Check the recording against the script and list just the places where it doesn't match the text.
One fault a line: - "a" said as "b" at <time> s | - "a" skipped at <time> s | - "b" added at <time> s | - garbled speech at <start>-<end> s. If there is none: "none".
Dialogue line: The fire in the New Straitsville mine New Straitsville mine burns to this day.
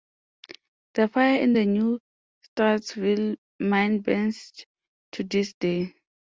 - "New Straitsville mine" skipped at 4.0 s